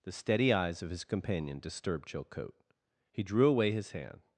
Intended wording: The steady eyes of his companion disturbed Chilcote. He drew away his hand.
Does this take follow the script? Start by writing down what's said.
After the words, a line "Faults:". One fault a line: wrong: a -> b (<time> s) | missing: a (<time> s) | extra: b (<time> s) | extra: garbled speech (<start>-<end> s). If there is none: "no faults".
The steady eyes of his companion disturbed Chilcote. He drew away his hand.
Faults:
no faults